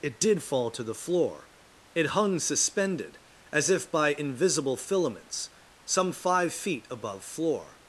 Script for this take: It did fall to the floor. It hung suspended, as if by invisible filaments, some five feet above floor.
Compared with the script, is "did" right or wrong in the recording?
right